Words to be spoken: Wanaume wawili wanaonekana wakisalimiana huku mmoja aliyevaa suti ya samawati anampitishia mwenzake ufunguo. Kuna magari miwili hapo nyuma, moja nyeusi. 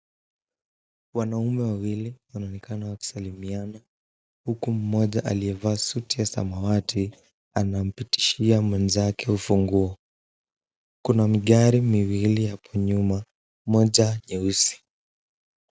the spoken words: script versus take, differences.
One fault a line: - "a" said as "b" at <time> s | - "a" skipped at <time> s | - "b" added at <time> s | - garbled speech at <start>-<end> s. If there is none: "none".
none